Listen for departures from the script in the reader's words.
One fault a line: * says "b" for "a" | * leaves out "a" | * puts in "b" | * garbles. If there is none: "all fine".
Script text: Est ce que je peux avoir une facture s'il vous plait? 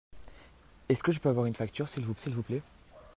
* puts in "s'il vous"